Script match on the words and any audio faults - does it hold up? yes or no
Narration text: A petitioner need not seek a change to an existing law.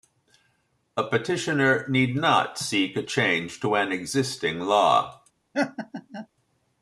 no